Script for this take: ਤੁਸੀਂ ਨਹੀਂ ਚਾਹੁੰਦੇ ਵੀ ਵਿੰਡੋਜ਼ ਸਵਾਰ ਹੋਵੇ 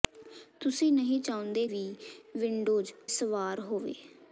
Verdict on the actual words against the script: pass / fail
pass